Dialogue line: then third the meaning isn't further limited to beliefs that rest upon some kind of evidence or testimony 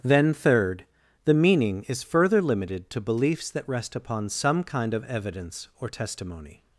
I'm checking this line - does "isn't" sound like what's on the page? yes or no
no